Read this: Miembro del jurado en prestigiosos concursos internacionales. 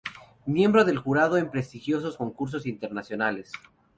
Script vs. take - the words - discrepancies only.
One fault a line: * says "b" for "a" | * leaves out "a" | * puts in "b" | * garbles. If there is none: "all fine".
all fine